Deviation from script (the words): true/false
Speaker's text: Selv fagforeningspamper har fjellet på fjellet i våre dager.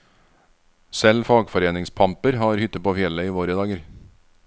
true